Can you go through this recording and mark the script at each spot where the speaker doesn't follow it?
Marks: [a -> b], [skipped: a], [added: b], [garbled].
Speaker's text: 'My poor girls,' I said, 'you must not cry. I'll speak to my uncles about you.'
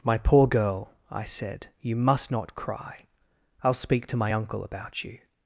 'My poor [girls,' -> girl] I said, 'you must not cry. I'll speak to my [uncles -> uncle] about you.'